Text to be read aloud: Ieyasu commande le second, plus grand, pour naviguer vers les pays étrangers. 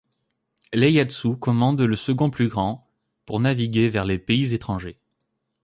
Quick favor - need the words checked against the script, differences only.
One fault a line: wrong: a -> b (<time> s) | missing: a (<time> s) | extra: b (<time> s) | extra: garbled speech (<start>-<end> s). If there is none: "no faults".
no faults